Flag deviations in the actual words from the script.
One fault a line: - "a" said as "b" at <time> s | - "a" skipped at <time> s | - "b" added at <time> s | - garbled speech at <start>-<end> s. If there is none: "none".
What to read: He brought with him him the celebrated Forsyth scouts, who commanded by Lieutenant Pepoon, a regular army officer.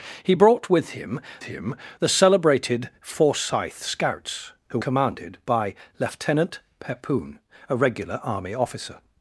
none